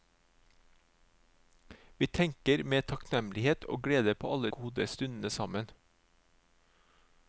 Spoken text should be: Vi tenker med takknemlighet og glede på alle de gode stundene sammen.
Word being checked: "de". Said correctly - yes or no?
no